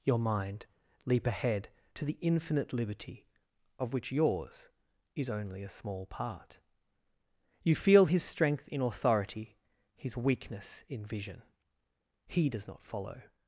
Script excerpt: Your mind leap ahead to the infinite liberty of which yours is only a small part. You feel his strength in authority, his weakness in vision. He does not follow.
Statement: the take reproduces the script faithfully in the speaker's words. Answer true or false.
true